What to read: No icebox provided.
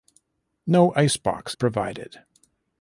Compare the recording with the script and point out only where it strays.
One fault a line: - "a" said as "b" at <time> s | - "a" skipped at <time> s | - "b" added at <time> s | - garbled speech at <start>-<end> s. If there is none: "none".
none